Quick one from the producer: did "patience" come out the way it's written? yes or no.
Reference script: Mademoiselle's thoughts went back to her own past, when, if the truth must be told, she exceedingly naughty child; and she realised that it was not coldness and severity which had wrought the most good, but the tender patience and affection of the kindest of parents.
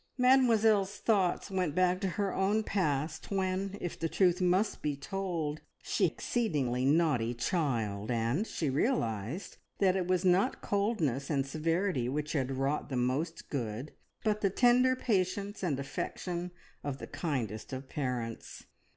yes